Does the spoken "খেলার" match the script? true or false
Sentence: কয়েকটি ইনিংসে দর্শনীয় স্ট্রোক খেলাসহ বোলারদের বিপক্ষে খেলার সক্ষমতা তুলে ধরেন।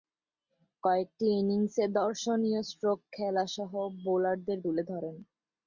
false